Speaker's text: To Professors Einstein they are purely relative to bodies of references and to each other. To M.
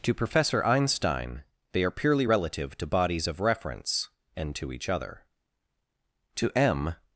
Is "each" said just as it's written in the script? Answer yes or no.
yes